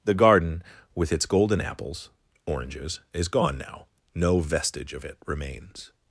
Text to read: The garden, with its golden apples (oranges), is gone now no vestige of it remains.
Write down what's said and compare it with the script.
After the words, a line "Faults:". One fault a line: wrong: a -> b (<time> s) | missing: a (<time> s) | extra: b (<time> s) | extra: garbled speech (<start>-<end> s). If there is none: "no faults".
The garden, with its golden apples (oranges), is gone now no vestige of it remains.
Faults:
no faults